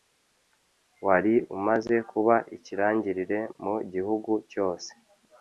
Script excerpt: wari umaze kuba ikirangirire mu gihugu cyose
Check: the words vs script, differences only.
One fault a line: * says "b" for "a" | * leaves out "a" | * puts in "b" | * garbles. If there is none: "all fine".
all fine